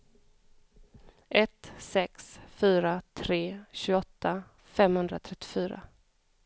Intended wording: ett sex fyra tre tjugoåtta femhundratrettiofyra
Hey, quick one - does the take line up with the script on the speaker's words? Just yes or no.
yes